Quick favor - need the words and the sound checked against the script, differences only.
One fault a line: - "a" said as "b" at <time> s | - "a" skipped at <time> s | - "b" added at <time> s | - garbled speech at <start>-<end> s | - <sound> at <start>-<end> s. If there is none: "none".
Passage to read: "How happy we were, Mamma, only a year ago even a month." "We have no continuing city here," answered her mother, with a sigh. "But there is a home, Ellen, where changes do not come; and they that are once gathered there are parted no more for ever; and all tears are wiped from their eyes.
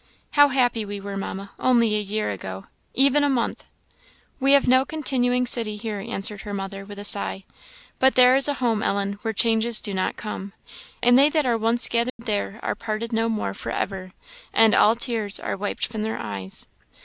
- dropout at 12.1-12.2 s